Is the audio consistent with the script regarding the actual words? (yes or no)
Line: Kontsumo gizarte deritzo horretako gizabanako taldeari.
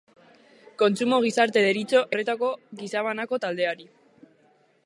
yes